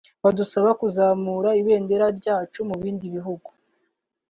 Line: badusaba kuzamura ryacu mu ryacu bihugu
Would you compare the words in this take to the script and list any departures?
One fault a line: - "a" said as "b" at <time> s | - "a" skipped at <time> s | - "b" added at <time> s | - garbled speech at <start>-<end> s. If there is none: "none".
- "ibendera" added at 1.6 s
- "ryacu" said as "bindi" at 2.8 s